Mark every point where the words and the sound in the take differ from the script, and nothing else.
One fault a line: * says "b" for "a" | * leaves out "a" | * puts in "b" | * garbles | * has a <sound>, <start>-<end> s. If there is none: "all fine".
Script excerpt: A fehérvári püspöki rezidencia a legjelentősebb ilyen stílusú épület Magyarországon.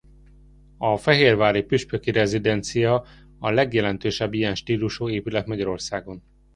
all fine